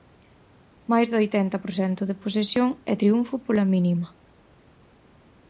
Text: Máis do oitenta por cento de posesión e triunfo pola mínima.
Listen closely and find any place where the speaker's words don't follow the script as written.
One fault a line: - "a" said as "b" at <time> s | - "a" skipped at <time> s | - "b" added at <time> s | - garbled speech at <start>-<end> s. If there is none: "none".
none